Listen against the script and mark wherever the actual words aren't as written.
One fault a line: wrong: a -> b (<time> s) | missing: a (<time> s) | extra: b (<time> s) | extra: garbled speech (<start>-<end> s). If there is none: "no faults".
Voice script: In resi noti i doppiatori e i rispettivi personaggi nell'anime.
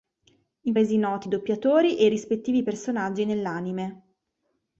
no faults